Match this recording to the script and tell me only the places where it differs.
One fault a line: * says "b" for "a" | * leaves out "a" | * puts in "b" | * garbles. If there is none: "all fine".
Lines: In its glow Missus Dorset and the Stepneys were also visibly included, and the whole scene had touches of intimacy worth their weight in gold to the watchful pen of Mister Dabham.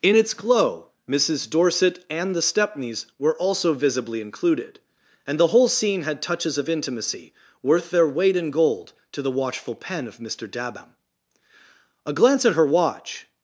* puts in "A glance at her watch"